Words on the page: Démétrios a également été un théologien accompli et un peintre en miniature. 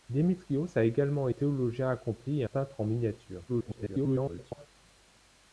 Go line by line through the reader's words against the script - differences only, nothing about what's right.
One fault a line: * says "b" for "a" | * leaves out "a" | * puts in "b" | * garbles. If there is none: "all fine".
* leaves out "été un"
* leaves out "un"
* garbles